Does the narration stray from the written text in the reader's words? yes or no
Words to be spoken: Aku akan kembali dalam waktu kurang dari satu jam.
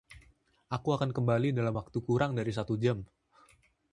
no